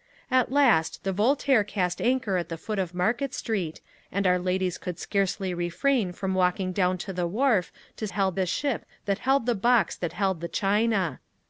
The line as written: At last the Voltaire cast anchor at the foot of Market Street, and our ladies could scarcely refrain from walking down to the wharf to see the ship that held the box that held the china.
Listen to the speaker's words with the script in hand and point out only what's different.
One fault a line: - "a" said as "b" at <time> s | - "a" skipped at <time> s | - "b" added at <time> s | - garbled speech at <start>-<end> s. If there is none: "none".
- "see" said as "held" at 8.1 s